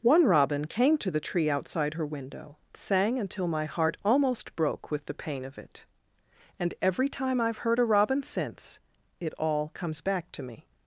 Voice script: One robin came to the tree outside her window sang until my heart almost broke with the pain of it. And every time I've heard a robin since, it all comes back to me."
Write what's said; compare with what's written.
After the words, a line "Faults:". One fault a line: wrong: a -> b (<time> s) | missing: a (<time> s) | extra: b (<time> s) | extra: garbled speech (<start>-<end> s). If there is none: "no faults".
One robin came to the tree outside her window sang until my heart almost broke with the pain of it. And every time I've heard a robin since, it all comes back to me."
Faults:
no faults